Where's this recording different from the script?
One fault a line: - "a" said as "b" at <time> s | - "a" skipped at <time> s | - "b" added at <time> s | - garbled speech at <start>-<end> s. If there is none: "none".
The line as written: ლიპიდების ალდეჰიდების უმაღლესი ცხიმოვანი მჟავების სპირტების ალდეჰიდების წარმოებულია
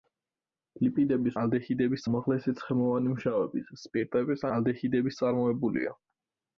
none